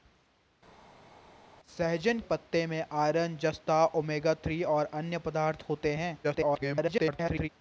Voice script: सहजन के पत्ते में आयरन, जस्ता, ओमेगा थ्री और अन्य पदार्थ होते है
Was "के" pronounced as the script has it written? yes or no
no